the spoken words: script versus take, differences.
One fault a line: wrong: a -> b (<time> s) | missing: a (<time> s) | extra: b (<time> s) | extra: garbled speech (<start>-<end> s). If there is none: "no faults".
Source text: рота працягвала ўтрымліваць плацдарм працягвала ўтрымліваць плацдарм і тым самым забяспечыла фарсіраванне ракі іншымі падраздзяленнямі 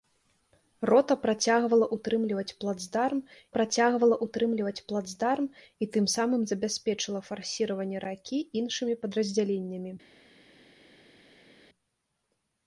no faults